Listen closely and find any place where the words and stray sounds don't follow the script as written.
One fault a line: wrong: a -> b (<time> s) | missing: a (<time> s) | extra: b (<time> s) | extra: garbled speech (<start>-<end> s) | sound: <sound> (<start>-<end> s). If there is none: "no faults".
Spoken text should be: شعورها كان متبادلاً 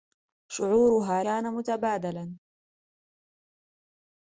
no faults